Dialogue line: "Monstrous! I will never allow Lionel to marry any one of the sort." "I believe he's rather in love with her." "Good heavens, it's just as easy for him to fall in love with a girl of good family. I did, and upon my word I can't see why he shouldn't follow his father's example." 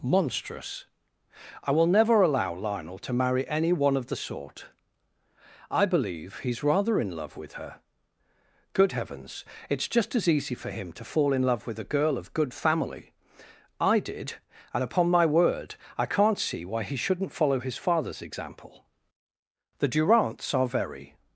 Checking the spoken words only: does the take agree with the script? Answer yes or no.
no